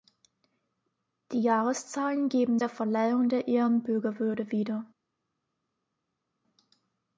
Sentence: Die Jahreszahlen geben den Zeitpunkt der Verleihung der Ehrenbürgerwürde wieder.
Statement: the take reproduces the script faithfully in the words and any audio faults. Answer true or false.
false